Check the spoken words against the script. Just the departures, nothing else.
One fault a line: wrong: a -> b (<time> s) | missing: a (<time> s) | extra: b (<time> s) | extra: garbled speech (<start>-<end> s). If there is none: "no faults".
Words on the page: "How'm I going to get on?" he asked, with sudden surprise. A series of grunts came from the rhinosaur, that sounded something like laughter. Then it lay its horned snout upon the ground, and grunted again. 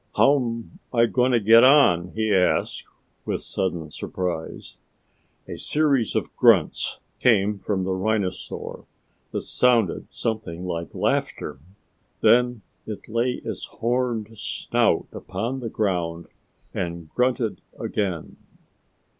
no faults